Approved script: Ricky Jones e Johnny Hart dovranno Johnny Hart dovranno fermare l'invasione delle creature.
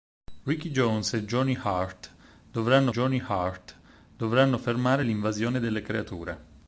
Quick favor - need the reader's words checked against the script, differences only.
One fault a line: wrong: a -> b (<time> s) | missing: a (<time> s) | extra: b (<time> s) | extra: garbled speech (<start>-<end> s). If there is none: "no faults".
no faults